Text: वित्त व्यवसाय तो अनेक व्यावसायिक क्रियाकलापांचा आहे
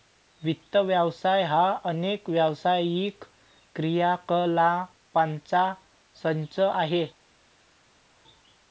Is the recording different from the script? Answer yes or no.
yes